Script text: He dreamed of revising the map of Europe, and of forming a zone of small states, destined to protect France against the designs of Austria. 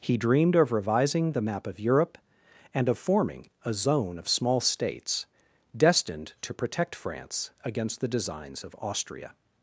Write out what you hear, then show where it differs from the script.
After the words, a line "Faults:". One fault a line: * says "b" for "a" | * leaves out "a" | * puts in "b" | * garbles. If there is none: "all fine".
He dreamed of revising the map of Europe, and of forming a zone of small states, destined to protect France against the designs of Austria.
Faults:
all fine